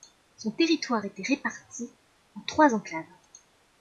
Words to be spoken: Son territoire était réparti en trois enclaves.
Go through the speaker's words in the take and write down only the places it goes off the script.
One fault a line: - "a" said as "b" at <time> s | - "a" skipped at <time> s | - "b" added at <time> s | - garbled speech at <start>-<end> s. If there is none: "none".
none